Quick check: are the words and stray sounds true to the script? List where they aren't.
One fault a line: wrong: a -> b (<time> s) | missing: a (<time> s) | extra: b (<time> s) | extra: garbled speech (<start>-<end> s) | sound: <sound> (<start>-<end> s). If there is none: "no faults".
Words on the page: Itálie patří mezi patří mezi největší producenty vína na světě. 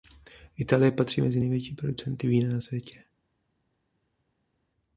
missing: patří mezi (1.4 s)